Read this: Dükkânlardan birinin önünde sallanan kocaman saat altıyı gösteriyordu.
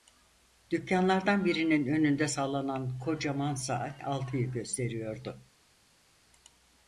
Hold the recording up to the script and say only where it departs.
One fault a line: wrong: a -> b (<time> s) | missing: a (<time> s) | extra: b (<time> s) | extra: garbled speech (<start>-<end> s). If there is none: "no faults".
no faults